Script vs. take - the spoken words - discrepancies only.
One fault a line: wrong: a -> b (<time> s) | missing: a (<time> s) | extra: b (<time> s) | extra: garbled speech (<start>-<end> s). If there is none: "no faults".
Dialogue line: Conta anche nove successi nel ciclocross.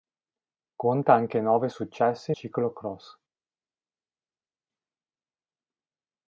missing: nel (2.3 s)